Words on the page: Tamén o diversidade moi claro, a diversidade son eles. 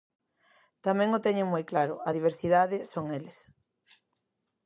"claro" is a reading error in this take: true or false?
false